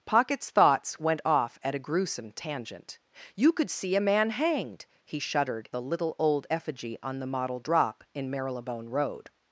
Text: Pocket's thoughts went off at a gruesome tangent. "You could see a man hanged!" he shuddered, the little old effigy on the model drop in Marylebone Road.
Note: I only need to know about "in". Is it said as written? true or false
true